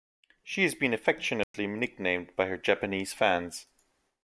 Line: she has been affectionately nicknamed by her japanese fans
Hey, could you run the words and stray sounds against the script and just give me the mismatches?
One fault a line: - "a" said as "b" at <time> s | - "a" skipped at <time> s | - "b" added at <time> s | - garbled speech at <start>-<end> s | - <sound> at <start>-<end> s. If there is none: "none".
- dropout at 1.4-1.5 s